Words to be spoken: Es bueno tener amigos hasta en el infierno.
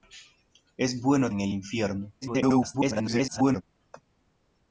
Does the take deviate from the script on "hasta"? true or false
true